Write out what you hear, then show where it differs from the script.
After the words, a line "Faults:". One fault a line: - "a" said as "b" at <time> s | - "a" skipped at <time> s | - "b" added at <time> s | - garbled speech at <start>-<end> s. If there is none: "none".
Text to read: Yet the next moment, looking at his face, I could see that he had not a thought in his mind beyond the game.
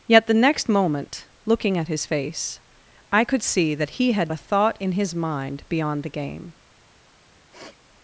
Yet the next moment, looking at his face, I could see that he had a thought in his mind beyond the game.
Faults:
- "not" skipped at 4.3 s